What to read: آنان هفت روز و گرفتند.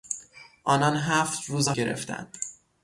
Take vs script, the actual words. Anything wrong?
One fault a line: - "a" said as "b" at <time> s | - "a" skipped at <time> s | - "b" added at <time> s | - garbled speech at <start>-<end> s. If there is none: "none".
none